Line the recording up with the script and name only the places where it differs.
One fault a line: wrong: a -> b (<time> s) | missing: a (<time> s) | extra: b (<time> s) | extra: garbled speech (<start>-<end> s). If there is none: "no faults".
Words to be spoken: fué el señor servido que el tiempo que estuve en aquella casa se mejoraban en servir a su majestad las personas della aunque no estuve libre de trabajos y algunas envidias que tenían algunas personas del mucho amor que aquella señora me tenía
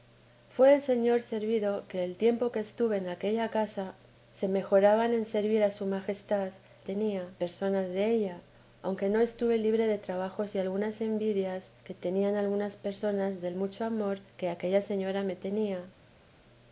wrong: las -> tenía (6.8 s)